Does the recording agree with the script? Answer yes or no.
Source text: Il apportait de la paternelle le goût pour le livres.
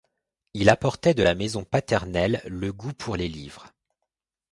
no